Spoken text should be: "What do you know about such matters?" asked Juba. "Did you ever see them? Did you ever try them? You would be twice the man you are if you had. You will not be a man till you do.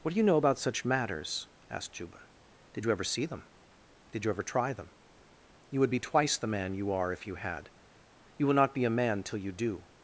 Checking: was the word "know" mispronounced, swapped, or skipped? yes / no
no